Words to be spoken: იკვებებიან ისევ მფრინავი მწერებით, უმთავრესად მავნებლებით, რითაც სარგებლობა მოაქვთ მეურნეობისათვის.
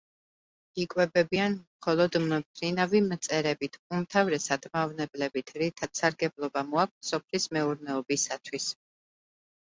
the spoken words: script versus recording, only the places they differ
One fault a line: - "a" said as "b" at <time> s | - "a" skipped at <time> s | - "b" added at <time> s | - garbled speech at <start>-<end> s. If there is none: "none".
- "ისევ" said as "მხოლოდ" at 1.6 s
- "სოფლის" added at 7.1 s